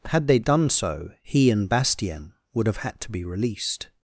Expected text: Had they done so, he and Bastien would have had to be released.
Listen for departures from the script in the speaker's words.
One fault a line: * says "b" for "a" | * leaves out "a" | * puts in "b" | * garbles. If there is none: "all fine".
all fine